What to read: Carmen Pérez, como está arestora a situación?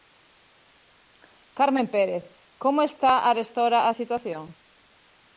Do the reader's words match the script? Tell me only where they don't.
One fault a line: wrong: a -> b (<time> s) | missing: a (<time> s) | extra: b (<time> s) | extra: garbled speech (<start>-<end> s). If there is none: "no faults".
no faults